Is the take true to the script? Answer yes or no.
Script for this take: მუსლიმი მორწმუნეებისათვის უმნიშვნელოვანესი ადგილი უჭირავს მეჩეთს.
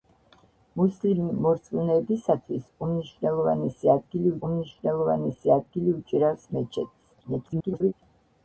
no